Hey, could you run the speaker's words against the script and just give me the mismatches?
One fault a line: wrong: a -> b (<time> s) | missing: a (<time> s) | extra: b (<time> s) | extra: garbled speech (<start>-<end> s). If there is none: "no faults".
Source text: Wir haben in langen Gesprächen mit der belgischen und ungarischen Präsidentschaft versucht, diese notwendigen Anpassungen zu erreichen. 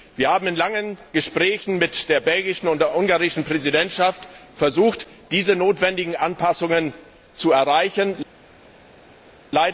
extra: der (2.8 s)